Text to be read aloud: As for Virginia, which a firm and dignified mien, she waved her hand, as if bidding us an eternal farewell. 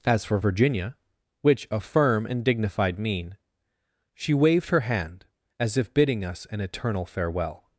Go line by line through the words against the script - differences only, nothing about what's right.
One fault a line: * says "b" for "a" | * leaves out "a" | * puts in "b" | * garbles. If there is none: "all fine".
all fine